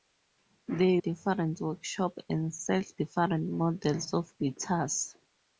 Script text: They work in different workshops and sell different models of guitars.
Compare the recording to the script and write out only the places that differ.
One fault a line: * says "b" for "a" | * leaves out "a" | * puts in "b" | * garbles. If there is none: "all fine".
* leaves out "work in"